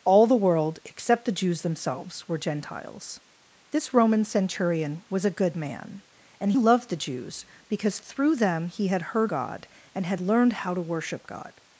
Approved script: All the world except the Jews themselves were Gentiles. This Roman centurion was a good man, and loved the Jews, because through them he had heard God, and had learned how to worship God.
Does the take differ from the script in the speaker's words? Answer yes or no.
no